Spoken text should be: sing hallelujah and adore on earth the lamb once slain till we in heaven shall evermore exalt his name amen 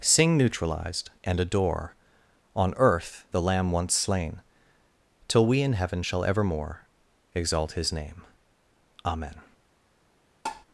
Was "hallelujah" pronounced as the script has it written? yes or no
no